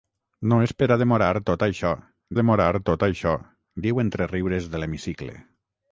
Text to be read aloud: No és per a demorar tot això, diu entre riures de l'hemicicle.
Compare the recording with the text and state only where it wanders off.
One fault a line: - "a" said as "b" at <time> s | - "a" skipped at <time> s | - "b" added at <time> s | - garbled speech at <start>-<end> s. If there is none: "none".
- "demorar tot això" added at 2.4 s